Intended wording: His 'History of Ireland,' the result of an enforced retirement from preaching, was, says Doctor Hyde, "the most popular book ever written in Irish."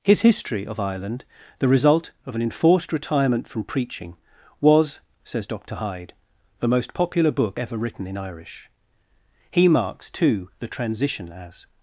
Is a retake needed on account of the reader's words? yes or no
yes